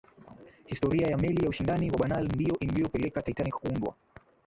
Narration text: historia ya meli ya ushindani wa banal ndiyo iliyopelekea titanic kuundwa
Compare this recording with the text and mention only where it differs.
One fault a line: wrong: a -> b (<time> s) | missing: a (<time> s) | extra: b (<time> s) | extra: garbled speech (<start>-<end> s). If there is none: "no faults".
no faults